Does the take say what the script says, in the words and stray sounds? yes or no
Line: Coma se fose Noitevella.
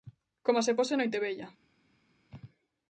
yes